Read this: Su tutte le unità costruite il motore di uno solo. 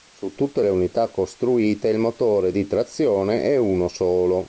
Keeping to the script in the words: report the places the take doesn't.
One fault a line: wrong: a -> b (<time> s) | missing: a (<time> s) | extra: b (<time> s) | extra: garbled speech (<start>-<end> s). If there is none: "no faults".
extra: trazione è (2.7 s)